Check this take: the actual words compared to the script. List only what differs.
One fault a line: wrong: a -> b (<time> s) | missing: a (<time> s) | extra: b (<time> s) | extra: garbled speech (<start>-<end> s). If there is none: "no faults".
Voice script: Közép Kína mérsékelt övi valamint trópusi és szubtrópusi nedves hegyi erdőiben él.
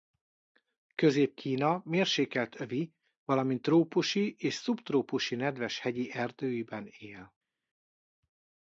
no faults